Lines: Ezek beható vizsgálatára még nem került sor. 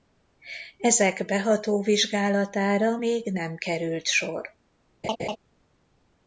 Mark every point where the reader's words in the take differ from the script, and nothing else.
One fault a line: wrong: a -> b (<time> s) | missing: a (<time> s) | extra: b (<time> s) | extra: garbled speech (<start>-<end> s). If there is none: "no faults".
no faults